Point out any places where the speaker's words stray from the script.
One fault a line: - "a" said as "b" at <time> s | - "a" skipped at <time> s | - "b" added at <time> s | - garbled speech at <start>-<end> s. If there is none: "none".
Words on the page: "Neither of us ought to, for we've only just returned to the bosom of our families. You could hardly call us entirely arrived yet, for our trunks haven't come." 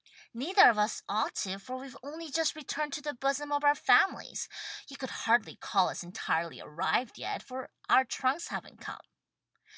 none